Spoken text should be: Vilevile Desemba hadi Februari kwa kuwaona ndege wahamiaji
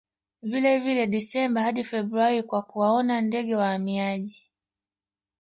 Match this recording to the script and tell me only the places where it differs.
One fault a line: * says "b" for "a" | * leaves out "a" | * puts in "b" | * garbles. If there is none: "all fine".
all fine